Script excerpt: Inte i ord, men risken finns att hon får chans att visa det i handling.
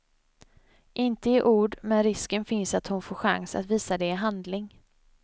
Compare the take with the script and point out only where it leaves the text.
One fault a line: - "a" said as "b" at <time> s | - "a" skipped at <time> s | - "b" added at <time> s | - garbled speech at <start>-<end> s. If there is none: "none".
none